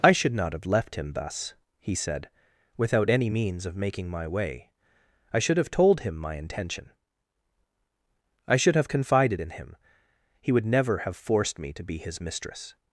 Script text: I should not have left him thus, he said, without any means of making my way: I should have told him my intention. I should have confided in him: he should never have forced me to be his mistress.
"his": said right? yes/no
yes